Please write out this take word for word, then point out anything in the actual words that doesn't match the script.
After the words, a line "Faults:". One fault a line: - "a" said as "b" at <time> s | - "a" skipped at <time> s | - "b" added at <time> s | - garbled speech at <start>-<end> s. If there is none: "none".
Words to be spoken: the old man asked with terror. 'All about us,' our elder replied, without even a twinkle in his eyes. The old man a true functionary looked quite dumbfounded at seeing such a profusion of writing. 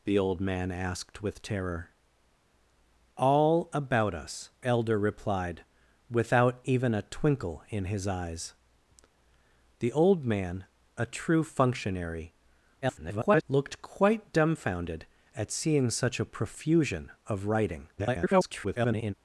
the old man asked with terror. 'All about us,' elder replied, without even a twinkle in his eyes. The old man a true functionary [garbled] looked quite dumbfounded at seeing such a profusion of writing. [garbled]
Faults:
- "our" skipped at 4.5 s
- garbled speech at 12.8-13.4 s
- garbled speech at 18.0-19.1 s